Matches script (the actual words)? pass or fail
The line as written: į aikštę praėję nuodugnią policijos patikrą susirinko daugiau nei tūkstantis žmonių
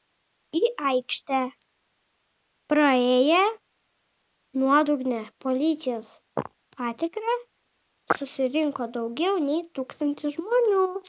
pass